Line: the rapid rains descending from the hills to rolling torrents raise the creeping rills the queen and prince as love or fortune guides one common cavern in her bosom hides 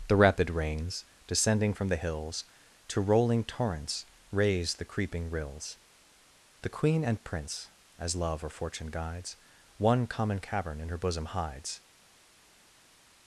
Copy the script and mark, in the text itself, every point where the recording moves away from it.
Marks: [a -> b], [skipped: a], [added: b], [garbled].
the rapid rains descending from the hills to rolling torrents raise the creeping rills the queen and prince as love or fortune guides one common cavern in her bosom hides